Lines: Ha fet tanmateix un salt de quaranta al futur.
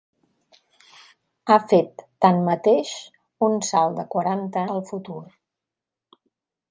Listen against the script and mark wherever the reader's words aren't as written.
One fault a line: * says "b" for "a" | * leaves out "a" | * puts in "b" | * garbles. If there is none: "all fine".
all fine